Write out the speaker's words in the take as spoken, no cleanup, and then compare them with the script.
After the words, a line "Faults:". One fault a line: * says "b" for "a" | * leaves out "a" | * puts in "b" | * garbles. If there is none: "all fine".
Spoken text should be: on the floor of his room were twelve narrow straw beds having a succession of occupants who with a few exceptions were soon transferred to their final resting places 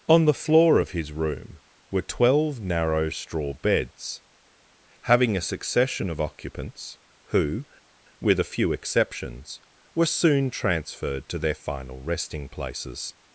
on the floor of his room were twelve narrow straw beds having a succession of occupants who with a few exceptions were soon transferred to their final resting places
Faults:
all fine